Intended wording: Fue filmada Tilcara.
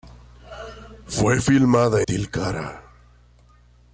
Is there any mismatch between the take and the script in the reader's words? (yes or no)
no